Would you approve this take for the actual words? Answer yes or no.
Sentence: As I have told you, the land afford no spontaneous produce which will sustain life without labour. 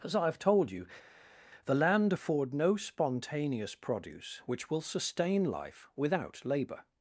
yes